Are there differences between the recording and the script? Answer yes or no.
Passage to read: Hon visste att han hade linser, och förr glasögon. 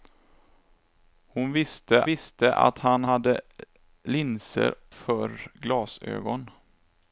yes